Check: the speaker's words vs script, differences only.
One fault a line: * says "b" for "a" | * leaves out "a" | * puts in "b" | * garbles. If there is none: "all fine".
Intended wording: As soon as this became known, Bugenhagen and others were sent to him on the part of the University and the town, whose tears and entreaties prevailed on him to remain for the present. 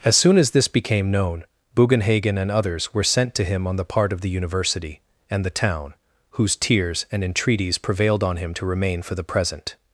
all fine